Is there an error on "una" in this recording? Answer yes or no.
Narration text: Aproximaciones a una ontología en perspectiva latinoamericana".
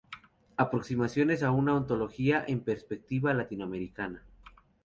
no